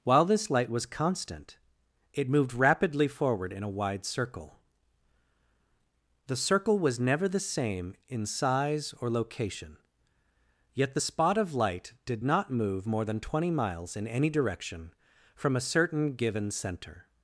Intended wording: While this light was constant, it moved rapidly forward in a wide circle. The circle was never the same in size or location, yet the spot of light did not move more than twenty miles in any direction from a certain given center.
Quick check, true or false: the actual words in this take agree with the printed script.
true